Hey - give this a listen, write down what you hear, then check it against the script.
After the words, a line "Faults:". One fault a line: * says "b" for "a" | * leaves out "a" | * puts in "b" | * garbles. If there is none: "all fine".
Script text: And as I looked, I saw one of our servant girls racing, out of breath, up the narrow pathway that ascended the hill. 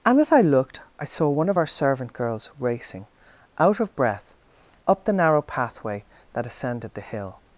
And as I looked, I saw one of our servant girls racing, out of breath, up the narrow pathway that ascended the hill.
Faults:
all fine